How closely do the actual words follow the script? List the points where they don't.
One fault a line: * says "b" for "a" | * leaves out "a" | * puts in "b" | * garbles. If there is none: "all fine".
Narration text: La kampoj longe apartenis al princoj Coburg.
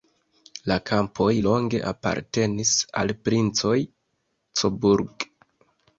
all fine